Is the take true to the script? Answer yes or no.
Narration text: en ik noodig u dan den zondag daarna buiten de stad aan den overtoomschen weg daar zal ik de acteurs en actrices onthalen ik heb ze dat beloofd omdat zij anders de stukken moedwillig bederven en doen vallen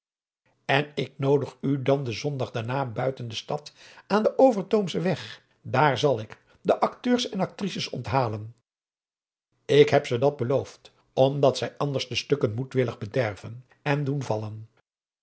yes